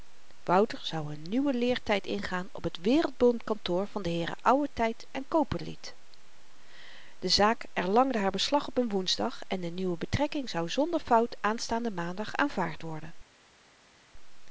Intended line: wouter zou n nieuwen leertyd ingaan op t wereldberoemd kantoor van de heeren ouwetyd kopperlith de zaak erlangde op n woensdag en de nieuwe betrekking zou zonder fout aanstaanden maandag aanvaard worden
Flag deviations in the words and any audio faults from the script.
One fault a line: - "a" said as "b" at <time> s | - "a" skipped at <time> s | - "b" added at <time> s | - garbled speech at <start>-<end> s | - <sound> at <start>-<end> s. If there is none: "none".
- "haar beslag" added at 8.2 s